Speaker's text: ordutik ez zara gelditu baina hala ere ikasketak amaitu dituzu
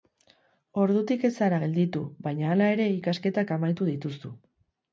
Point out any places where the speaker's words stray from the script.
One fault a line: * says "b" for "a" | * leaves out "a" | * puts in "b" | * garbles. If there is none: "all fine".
all fine